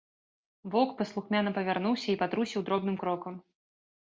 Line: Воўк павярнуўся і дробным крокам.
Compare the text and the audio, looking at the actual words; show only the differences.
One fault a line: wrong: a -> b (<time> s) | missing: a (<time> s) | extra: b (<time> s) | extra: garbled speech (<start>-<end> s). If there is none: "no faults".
extra: паслухмяна (1.0 s)
extra: патрусіў (2.2 s)